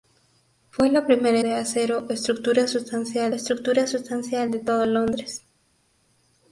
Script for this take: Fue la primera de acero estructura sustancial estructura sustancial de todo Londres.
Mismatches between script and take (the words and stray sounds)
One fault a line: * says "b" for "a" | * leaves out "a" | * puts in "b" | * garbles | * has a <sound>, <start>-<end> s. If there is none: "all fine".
all fine